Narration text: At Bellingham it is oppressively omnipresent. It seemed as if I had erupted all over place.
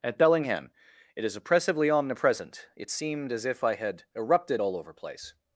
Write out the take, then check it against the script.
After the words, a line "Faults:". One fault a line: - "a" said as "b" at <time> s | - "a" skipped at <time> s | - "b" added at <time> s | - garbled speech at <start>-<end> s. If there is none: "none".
At Bellingham it is oppressively omnipresent. It seemed as if I had erupted all over place.
Faults:
none